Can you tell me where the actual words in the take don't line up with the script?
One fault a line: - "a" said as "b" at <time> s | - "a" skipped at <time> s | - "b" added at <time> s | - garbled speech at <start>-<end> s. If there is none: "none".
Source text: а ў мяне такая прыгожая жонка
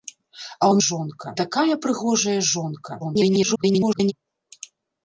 - "мяне" said as "жонка" at 0.9 s
- garbled speech at 3.0-4.1 s